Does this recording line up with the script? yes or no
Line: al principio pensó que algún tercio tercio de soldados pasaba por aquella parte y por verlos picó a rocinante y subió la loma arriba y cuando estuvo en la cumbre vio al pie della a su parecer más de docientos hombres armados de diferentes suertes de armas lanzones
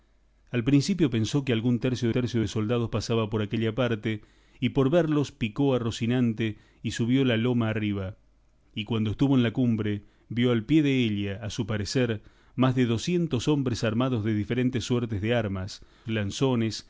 yes